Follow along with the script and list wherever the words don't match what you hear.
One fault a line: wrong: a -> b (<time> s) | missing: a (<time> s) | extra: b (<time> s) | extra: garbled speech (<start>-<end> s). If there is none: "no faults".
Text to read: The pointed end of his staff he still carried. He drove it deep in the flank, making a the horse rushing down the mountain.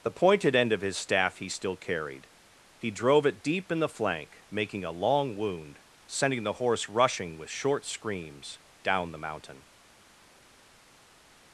extra: long wound sending (4.9 s)
extra: with short screams (7.4 s)